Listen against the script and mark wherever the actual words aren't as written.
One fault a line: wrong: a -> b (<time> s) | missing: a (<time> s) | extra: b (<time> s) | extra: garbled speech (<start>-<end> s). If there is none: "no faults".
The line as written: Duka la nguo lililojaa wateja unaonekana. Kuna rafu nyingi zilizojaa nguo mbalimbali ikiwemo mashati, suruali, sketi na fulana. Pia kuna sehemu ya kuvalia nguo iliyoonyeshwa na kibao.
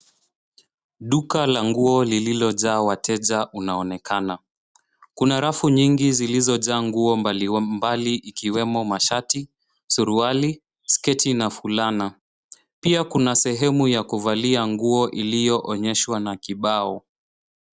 no faults